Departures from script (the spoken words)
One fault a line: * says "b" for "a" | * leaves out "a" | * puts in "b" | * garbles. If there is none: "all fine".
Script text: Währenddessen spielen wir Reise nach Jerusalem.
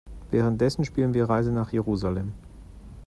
all fine